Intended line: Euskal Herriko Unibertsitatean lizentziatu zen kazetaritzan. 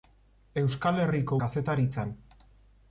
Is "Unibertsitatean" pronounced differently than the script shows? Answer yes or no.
yes